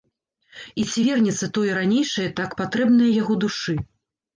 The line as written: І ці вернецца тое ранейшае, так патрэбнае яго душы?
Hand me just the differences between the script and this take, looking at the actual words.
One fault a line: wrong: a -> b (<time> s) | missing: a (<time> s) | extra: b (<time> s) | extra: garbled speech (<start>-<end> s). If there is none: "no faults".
no faults